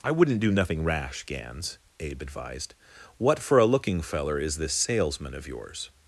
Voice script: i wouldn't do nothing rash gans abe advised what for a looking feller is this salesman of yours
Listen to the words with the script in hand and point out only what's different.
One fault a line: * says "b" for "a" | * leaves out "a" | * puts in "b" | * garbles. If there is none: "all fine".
all fine